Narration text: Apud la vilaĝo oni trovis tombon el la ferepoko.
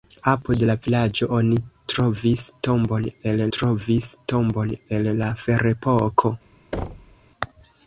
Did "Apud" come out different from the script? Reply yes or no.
no